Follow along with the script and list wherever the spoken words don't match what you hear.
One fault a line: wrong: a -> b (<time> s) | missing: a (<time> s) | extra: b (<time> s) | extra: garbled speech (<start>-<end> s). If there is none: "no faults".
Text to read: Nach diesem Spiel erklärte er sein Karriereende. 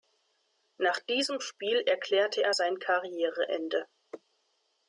no faults